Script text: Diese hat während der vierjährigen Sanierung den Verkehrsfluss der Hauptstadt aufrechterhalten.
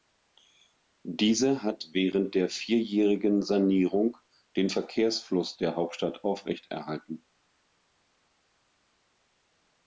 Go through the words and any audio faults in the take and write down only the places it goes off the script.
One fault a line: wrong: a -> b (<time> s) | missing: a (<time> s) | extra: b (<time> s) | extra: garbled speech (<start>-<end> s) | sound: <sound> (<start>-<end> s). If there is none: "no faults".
no faults